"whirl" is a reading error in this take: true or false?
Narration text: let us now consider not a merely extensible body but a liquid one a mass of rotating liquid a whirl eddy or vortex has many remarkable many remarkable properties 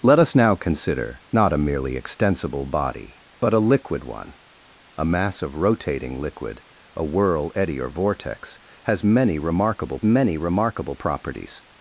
false